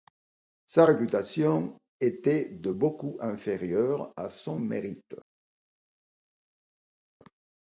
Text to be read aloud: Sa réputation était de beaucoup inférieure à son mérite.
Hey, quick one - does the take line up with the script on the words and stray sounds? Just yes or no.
yes